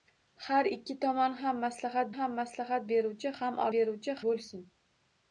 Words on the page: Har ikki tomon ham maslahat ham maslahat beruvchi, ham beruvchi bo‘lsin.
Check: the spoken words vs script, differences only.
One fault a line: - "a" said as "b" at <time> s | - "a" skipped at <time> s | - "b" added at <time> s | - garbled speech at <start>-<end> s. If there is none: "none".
none